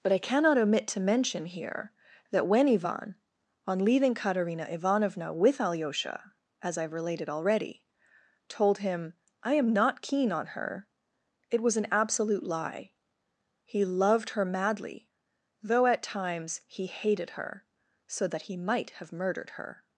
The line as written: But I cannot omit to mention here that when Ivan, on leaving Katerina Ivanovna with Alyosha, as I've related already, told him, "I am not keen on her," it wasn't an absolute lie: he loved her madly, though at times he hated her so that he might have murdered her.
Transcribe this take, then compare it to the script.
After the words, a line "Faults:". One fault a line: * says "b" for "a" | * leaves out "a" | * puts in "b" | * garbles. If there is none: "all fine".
But I cannot omit to mention here that when Ivan, on leaving Katerina Ivanovna with Alyosha, as I've related already, told him, "I am not keen on her," it was an absolute lie: he loved her madly, though at times he hated her so that he might have murdered her.
Faults:
* says "was" for "wasn't"